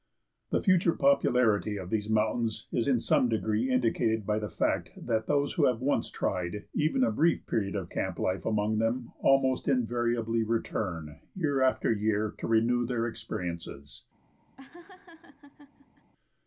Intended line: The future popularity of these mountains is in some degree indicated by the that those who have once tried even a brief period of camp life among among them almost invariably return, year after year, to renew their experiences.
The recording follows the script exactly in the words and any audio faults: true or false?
false